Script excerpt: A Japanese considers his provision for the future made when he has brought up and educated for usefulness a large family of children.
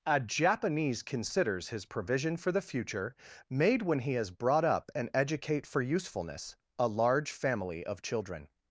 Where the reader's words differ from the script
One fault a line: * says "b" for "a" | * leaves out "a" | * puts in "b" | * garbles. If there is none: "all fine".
* says "educate" for "educated"